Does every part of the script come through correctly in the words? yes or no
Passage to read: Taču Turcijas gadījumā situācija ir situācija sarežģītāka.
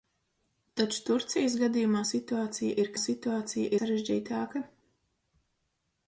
yes